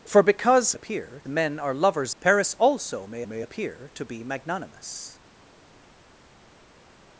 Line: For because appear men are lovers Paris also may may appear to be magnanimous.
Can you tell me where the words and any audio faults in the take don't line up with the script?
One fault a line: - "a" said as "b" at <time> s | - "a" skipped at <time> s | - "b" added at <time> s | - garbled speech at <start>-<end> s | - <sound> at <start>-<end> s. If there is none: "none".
none